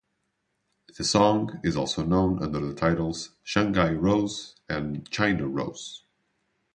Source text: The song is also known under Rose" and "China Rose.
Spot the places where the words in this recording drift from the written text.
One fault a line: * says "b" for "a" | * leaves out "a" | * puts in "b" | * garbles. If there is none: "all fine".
* puts in "the titles Shanghai"